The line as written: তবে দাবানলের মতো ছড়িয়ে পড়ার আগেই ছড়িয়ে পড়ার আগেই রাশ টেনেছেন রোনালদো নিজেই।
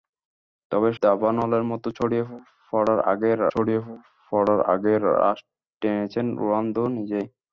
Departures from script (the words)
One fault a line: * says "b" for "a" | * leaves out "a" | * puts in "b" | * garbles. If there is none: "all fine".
all fine